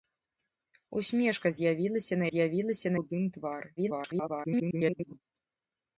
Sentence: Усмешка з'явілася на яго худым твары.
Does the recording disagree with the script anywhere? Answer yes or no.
yes